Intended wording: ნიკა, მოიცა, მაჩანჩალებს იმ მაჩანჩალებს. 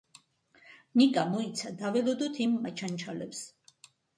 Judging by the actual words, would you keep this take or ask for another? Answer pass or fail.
fail